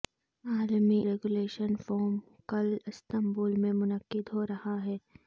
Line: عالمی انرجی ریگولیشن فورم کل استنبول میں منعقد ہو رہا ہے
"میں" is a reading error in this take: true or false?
false